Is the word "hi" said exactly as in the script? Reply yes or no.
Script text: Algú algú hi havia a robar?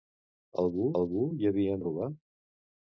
yes